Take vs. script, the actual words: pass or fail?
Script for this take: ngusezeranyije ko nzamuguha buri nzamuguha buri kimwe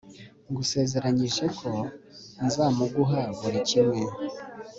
fail